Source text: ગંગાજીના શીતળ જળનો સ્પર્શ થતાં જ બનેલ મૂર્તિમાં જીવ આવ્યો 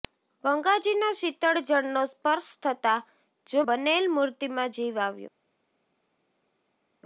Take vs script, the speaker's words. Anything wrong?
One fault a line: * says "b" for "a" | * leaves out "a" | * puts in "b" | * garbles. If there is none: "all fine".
all fine